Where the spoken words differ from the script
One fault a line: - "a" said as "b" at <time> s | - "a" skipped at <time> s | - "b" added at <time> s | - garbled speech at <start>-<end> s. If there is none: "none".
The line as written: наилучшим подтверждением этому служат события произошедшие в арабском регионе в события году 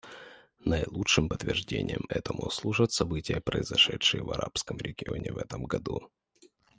- "события" said as "этом" at 5.4 s